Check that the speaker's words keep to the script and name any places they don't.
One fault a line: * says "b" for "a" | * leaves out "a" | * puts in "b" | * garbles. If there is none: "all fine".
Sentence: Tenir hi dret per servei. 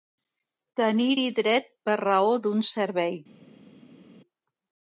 * puts in "raó d'un"